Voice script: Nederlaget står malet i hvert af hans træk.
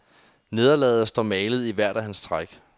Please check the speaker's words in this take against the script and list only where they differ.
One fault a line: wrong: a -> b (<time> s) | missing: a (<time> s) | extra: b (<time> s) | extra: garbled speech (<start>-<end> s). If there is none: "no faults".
no faults